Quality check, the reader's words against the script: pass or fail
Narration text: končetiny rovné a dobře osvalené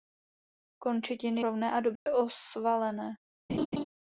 pass